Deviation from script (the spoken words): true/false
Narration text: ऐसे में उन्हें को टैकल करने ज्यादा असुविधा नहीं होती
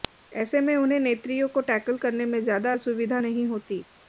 true